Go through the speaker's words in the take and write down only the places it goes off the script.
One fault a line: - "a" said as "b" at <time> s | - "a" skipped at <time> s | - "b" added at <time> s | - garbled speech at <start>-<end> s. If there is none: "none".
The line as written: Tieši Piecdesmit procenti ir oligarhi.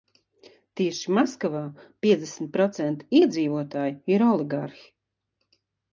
- "Maskavā" added at 1.2 s
- "iedzīvotāju" added at 3.2 s